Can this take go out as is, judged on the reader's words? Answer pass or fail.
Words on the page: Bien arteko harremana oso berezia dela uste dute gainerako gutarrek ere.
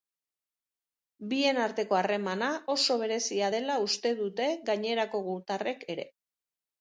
pass